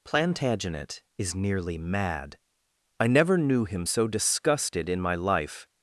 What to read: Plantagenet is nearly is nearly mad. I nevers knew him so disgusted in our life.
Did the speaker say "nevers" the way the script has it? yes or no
no